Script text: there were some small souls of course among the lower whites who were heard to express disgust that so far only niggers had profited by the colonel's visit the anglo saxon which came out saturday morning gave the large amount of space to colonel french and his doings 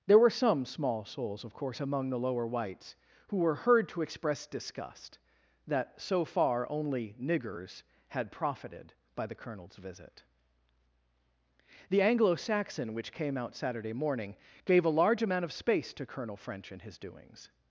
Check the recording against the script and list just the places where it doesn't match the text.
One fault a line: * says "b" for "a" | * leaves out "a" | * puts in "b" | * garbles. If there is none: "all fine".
* says "a" for "the"